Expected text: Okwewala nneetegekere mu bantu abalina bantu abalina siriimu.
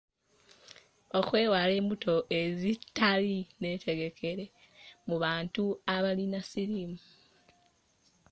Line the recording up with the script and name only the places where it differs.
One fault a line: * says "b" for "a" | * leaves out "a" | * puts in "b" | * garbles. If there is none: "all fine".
* puts in "embuto ezitali"
* leaves out "bantu abalina"